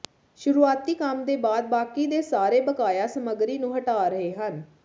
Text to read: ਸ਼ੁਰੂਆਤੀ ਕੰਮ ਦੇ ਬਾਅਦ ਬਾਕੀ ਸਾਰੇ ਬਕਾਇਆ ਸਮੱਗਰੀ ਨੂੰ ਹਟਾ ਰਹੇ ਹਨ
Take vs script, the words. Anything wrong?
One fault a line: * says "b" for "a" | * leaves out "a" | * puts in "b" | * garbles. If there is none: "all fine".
* puts in "ਦੇ"